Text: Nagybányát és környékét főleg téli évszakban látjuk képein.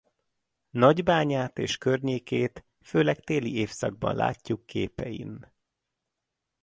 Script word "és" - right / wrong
right